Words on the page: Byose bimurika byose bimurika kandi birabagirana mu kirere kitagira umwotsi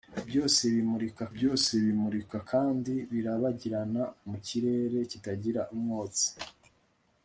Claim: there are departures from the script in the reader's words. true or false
false